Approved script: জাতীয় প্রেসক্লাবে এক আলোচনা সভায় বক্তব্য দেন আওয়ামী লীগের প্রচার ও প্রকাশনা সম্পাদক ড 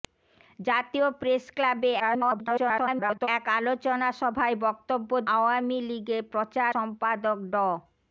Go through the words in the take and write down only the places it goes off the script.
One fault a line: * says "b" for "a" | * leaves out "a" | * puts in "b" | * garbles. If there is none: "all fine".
* garbles
* leaves out "দেন"
* leaves out "ও প্রকাশনা"